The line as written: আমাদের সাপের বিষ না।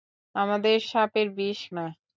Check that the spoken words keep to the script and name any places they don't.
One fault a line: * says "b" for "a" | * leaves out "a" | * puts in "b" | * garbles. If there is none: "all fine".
all fine